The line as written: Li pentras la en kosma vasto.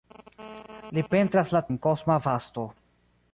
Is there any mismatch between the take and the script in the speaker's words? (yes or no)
no